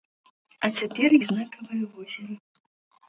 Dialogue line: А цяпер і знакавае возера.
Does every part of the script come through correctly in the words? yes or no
yes